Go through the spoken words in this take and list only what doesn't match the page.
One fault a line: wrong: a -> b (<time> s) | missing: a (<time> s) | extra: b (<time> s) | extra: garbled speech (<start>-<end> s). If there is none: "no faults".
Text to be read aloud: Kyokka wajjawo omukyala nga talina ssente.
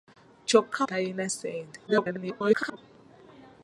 missing: wajjawo omukyala nga (0.8 s)
extra: garbled speech (1.9-2.8 s)